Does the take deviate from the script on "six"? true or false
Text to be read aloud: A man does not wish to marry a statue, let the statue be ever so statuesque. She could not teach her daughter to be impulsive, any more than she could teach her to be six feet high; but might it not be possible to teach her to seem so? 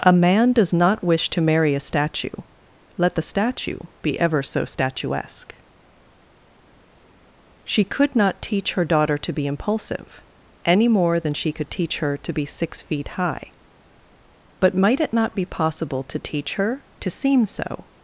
false